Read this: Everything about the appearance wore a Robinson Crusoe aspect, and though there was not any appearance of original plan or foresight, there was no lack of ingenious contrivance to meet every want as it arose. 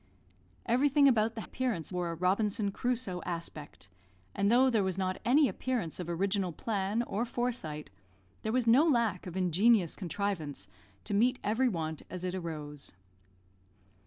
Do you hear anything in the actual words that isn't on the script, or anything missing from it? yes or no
no